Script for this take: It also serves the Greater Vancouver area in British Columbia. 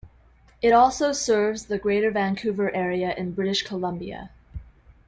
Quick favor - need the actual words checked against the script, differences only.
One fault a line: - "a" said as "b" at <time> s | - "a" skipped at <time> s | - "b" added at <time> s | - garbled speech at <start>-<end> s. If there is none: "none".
none